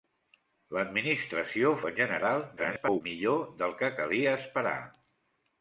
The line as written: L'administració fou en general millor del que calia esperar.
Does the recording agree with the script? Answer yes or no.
no